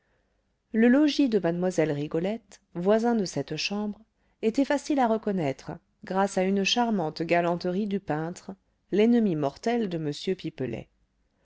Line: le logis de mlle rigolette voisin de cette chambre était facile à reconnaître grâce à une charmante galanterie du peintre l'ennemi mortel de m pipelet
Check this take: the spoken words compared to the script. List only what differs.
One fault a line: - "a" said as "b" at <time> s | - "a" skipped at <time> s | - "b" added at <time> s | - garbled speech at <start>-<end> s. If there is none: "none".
none